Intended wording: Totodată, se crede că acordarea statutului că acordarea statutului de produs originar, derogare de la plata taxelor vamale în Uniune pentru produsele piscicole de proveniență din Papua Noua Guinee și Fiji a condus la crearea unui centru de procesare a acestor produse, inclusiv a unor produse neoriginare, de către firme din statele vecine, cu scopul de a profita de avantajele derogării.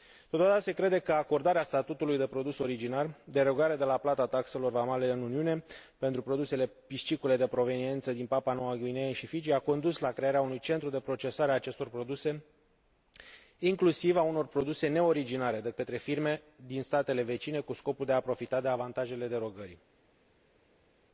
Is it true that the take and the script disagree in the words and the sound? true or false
true